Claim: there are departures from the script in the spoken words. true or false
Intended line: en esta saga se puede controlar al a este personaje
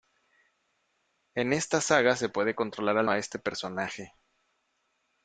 false